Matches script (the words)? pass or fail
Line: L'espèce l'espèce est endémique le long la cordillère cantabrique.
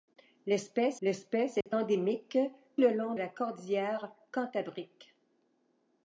pass